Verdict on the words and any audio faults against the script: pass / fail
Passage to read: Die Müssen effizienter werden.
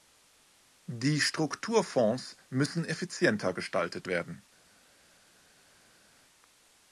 fail